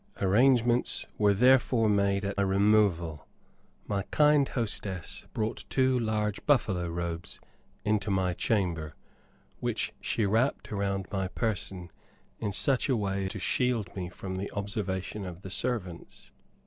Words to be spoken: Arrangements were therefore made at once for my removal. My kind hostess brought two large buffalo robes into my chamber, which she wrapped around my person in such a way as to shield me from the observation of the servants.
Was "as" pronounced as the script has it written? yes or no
no